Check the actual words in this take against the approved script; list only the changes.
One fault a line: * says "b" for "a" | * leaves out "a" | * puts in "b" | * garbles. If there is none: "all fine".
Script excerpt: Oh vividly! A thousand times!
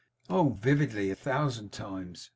all fine